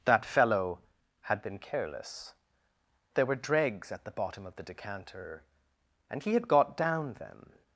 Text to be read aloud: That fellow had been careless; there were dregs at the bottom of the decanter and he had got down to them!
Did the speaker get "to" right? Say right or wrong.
wrong